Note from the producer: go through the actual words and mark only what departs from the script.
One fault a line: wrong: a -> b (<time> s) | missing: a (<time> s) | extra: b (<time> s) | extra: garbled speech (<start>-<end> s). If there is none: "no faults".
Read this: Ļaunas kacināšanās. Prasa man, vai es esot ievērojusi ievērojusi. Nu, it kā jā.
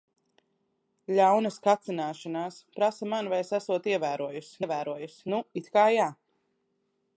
no faults